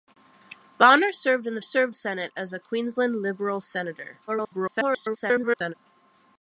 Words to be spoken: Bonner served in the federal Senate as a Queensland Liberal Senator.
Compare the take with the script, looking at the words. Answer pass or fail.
fail